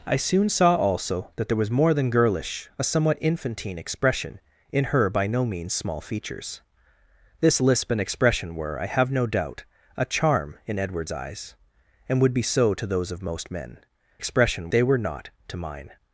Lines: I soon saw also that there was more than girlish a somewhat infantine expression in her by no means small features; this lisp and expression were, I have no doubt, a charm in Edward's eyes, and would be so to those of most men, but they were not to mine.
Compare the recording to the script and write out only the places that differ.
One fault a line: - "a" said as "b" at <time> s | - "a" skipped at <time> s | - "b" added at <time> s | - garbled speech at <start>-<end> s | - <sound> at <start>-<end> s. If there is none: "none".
- "but" said as "expression" at 14.2 s